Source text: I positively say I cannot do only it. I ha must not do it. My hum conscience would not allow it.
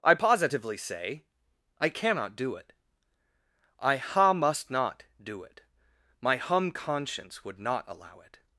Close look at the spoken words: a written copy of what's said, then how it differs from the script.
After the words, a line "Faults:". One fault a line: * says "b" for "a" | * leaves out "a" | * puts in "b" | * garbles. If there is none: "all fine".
I positively say I cannot do it. I ha must not do it. My hum conscience would not allow it.
Faults:
* leaves out "only"